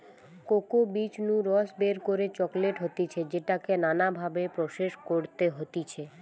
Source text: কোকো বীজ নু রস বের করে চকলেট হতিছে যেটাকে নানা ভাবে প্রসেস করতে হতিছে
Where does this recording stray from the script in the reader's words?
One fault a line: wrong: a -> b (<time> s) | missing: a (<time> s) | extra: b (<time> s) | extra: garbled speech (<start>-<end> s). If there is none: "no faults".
no faults